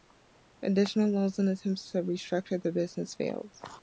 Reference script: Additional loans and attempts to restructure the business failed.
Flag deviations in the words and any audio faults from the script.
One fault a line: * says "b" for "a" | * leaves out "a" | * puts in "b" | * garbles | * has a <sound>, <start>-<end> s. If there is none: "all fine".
all fine